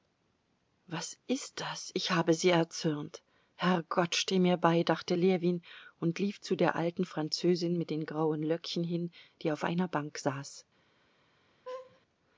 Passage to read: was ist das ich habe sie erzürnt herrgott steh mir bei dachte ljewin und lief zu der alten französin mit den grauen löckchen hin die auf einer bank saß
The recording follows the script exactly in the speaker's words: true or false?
true